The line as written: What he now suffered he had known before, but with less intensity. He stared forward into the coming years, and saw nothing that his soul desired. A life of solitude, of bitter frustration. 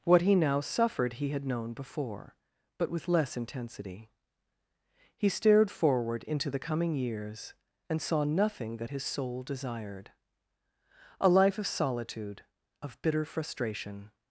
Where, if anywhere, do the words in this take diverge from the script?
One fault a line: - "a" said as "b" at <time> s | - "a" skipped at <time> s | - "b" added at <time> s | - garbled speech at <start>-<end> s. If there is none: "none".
none